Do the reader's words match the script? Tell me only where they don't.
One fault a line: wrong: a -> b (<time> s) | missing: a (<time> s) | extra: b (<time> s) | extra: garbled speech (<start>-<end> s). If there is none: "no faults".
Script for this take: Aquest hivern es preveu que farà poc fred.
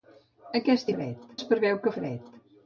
wrong: hivern -> fred (0.9 s)
missing: farà poc (2.0 s)